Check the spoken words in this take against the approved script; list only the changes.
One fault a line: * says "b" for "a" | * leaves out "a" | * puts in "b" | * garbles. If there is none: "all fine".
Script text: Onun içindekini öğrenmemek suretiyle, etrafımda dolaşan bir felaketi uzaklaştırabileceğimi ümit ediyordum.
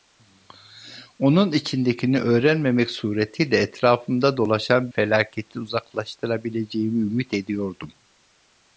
* leaves out "bir"